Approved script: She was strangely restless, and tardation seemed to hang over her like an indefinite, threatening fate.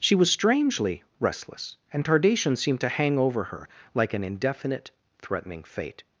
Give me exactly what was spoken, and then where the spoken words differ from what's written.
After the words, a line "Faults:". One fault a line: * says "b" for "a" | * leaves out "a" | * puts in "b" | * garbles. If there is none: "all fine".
She was strangely restless, and tardation seemed to hang over her like an indefinite, threatening fate.
Faults:
all fine